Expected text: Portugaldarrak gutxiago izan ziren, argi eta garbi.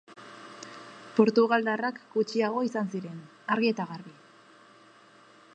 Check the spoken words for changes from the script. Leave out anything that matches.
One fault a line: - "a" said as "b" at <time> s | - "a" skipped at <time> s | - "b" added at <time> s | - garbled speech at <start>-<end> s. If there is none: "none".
none